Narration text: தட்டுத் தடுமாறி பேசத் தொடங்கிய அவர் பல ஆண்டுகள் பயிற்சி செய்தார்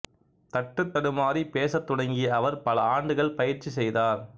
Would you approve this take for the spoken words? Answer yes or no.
yes